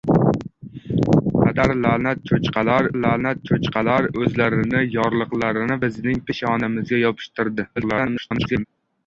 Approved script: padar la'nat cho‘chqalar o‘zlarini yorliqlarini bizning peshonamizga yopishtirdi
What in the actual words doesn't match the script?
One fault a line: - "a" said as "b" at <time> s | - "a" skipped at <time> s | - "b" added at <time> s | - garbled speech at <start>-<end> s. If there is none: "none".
- "la'nat cho‘chqalar" added at 3.0 s
- garbled speech at 7.8-8.6 s